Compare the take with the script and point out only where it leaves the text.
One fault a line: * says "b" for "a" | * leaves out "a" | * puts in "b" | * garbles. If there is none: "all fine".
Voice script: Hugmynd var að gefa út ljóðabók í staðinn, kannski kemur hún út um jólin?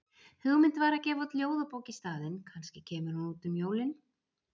all fine